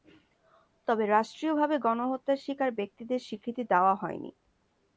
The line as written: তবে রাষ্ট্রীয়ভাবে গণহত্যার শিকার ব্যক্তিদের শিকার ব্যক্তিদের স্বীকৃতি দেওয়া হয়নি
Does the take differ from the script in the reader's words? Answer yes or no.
yes